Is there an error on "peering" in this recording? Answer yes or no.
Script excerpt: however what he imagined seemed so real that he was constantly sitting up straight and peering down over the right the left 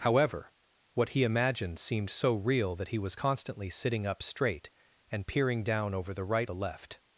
no